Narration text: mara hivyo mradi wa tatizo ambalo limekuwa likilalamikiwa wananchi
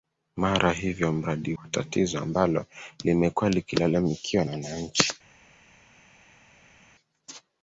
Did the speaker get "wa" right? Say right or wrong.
right